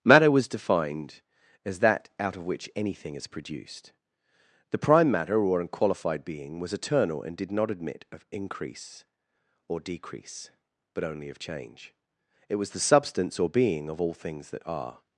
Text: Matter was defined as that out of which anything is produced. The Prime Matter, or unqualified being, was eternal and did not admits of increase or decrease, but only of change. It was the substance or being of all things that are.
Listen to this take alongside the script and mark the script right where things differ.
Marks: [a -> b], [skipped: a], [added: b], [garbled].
Matter was defined as that out of which anything is produced. The Prime Matter, or unqualified being, was eternal and did not [admits -> admit] of increase or decrease, but only of change. It was the substance or being of all things that are.